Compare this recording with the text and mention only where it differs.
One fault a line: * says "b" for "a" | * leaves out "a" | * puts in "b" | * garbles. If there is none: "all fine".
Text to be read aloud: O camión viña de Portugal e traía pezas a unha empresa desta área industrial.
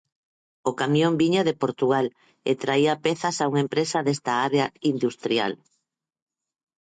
all fine